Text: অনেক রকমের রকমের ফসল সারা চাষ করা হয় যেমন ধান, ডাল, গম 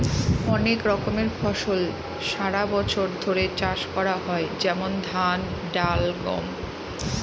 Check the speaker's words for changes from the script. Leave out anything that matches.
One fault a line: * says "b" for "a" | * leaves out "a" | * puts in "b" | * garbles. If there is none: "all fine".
* leaves out "রকমের"
* puts in "বছর ধরে"